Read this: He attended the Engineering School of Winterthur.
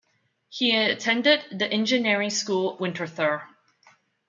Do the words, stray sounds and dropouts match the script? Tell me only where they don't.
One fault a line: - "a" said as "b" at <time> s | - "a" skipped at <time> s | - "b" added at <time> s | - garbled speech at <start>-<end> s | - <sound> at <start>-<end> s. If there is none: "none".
- "of" skipped at 2.8 s